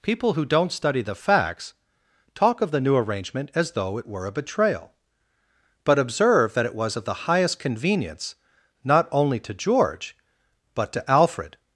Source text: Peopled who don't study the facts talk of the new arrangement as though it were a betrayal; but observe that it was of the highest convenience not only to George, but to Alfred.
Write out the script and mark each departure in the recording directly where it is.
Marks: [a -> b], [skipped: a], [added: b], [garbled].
[Peopled -> People] who don't study the facts talk of the new arrangement as though it were a betrayal; but observe that it was of the highest convenience not only to George, but to Alfred.